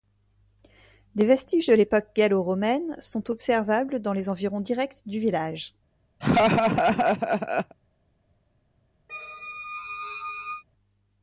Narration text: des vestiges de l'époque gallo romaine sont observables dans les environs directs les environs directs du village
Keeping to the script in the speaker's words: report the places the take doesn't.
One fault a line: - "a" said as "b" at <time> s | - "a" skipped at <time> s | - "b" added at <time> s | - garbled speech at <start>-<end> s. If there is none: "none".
- "les environs directs" skipped at 5.0 s